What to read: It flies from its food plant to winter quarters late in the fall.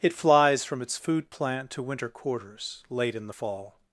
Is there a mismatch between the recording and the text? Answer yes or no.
no